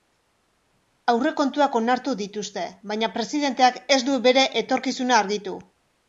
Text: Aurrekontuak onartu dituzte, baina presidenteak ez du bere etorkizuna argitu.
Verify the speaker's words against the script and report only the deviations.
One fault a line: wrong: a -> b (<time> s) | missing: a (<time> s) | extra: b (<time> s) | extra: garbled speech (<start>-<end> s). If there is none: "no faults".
no faults